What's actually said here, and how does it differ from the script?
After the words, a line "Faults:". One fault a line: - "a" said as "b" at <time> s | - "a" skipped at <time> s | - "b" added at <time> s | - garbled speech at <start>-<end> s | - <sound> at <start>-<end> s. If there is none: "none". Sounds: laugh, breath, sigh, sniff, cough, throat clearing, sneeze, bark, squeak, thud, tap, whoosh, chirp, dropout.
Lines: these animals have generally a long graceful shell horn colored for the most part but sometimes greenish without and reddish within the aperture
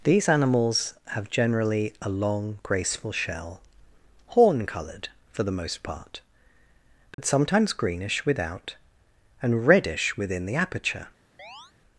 these animals have generally a long graceful shell horn colored for the most part but sometimes greenish without and reddish within the aperture
Faults:
- dropout at 7.1-7.2 s
- chirp at 11.4-11.7 s